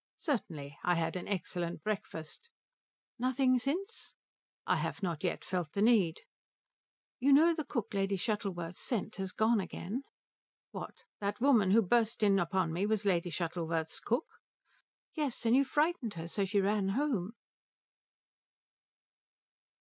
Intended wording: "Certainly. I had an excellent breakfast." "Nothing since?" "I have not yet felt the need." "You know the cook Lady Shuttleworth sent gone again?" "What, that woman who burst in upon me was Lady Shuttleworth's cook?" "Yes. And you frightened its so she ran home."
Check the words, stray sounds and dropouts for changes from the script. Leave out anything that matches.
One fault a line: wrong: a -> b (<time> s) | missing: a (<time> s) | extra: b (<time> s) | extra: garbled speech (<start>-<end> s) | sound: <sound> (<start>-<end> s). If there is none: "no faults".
extra: has (9.2 s)
wrong: its -> her (16.1 s)